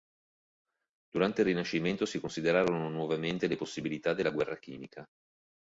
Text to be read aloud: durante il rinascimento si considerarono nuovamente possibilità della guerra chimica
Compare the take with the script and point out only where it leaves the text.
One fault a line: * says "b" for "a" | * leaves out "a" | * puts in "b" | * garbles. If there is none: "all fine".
* puts in "le"